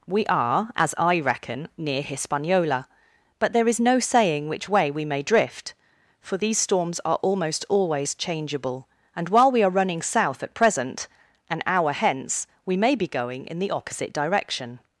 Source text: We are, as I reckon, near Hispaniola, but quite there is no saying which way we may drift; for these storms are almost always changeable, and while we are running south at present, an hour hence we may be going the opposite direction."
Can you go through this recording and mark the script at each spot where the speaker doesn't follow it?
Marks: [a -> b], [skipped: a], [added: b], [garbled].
We are, as I reckon, near Hispaniola, but [skipped: quite] there is no saying which way we may drift; for these storms are almost always changeable, and while we are running south at present, an hour hence we may be going [added: in] the opposite direction."